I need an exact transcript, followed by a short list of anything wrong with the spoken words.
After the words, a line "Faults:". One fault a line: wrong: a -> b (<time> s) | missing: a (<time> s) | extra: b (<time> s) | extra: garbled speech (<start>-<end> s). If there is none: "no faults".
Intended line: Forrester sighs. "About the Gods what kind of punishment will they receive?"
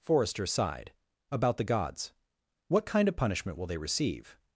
Forrester sighed. "About the Gods what kind of punishment will they receive?"
Faults:
wrong: sighs -> sighed (0.5 s)